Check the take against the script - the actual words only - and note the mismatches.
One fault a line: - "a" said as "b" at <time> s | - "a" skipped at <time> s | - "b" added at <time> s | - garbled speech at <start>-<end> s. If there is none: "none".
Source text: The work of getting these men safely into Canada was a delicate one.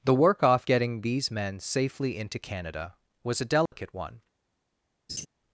- "of" said as "off" at 0.4 s